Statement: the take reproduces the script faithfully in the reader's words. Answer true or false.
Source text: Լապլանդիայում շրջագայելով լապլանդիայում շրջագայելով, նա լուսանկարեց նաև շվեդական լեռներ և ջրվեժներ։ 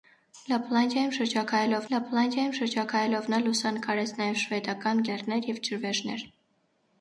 true